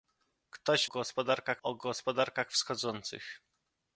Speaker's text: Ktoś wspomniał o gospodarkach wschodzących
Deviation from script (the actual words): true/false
true